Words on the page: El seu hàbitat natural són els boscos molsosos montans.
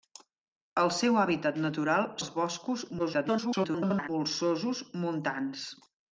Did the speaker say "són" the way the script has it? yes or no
no